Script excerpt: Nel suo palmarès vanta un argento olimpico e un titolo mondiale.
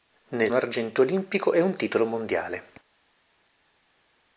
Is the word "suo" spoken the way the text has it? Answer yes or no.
no